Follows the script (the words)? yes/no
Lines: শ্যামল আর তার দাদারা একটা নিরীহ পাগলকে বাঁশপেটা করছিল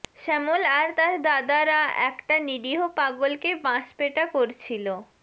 yes